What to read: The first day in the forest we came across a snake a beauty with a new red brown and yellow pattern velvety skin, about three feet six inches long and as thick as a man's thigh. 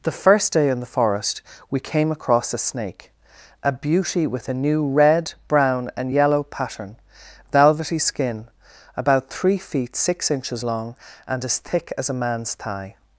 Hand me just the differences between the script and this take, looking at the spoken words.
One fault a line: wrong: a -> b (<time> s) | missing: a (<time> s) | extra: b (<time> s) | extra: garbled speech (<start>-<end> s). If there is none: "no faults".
no faults